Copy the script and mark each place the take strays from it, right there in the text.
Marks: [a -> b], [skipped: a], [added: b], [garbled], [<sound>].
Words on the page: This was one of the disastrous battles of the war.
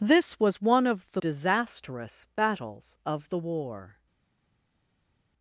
This was one of the disastrous battles of the war.